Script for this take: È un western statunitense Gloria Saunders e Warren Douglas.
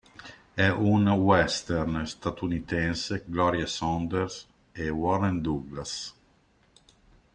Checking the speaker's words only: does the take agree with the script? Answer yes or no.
yes